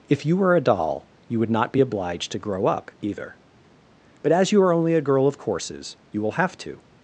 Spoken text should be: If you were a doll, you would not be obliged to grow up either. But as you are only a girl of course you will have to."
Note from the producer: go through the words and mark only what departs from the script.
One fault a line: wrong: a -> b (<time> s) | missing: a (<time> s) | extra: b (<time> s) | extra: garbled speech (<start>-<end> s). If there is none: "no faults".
wrong: course -> courses (5.4 s)